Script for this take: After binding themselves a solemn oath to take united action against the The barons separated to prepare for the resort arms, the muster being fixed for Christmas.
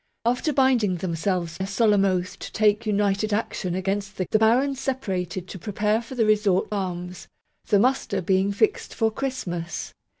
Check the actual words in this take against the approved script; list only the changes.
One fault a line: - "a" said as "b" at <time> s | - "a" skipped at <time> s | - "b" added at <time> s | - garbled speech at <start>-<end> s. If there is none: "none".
none